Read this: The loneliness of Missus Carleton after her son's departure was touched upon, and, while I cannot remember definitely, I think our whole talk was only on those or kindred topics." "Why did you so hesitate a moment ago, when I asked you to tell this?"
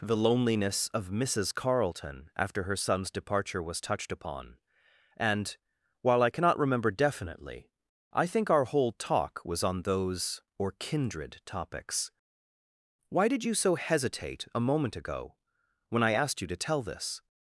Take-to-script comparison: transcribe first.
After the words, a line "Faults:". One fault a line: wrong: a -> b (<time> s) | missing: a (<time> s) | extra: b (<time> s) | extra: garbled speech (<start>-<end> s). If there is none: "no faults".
The loneliness of Missus Carleton after her son's departure was touched upon, and, while I cannot remember definitely, I think our whole talk was on those or kindred topics." "Why did you so hesitate a moment ago, when I asked you to tell this?"
Faults:
missing: only (9.6 s)